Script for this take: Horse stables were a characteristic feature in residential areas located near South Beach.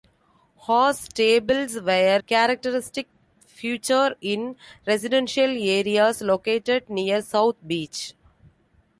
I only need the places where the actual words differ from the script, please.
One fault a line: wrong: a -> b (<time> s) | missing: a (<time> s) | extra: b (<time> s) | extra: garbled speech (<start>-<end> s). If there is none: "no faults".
missing: a (2.2 s)